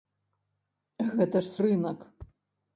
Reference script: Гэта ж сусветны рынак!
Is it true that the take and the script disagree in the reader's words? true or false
true